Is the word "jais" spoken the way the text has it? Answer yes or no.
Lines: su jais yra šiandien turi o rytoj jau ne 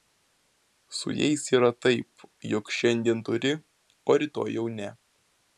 yes